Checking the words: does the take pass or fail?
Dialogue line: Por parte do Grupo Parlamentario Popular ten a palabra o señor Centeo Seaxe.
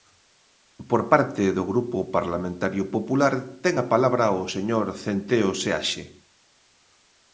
pass